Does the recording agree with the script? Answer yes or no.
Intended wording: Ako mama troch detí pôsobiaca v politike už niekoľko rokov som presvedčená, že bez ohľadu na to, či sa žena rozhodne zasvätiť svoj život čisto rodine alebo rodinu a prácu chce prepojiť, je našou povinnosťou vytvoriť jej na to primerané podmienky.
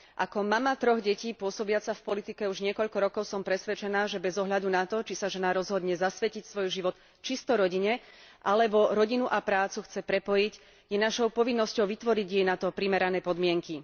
yes